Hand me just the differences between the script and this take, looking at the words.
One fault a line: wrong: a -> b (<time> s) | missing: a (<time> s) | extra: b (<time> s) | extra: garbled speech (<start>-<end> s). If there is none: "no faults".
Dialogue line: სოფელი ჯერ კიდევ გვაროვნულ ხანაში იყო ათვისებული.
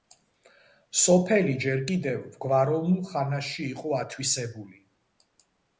no faults